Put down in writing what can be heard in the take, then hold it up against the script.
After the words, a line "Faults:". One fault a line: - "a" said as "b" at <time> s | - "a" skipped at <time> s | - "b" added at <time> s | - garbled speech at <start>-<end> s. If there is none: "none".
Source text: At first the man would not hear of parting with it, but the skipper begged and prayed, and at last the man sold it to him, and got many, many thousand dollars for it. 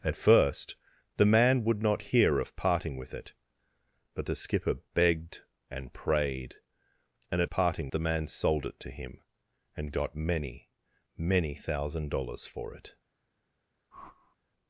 At first the man would not hear of parting with it, but the skipper begged and prayed, and at parting the man sold it to him, and got many, many thousand dollars for it.
Faults:
- "last" said as "parting" at 7.5 s